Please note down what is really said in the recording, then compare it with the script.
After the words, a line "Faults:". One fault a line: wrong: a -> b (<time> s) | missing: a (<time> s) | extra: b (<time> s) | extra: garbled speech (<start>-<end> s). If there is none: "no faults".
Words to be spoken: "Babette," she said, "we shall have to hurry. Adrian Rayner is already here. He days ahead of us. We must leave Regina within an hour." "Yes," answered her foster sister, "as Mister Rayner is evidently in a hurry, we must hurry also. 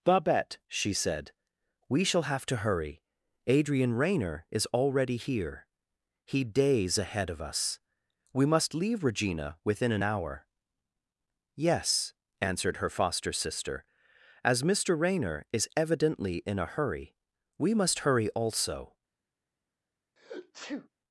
"Babette," she said, "we shall have to hurry. Adrian Rayner is already here. He days ahead of us. We must leave Regina within an hour." "Yes," answered her foster sister, "as Mister Rayner is evidently in a hurry, we must hurry also.
Faults:
no faults